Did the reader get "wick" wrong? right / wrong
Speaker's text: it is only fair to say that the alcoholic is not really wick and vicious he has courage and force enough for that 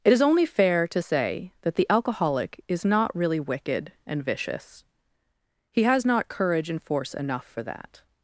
wrong